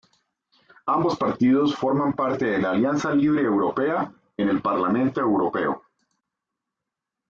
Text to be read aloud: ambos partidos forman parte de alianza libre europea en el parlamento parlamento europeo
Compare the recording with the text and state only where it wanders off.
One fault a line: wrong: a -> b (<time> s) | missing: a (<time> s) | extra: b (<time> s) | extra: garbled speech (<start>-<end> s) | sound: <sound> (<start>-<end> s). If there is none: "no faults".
extra: la (2.6 s)
missing: parlamento (5.2 s)